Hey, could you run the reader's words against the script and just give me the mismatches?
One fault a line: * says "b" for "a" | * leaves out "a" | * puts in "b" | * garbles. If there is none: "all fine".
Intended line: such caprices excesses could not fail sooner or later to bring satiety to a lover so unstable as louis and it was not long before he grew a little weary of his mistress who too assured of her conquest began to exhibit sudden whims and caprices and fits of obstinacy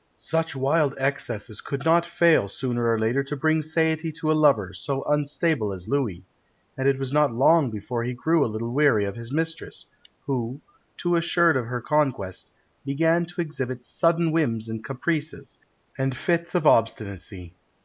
* says "wild" for "caprices"